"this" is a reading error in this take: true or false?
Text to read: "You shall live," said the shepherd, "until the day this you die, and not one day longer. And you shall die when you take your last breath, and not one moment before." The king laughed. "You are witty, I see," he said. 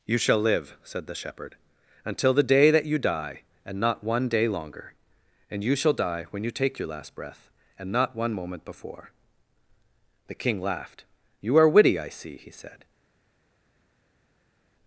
true